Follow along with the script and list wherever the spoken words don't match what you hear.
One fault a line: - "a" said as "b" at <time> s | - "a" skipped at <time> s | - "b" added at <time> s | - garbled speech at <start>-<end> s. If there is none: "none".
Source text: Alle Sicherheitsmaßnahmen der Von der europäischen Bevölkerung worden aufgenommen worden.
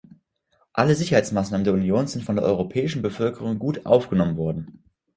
- "Union sind" added at 1.8 s
- "worden" said as "gut" at 3.6 s